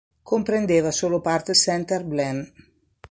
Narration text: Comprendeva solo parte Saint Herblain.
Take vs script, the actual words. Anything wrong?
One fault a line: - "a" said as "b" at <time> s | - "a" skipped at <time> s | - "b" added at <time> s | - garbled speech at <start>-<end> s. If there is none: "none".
none